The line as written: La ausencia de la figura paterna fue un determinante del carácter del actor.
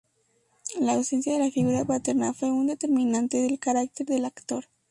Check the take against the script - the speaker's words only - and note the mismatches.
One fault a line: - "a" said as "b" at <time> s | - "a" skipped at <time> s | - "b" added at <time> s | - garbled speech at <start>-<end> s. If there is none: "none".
none